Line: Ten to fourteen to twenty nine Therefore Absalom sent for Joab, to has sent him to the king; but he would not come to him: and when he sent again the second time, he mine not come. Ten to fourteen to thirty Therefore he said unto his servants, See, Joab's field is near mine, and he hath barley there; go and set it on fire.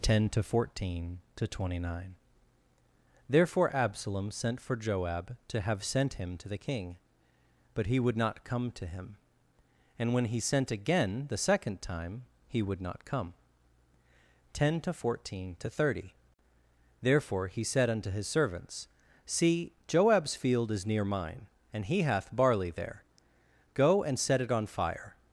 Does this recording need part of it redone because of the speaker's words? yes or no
yes